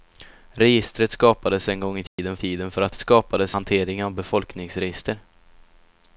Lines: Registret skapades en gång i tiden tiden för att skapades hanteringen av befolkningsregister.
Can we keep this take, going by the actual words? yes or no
yes